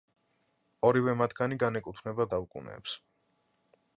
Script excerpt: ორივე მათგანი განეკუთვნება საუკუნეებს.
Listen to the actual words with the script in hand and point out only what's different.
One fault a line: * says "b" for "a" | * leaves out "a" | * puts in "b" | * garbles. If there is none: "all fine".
all fine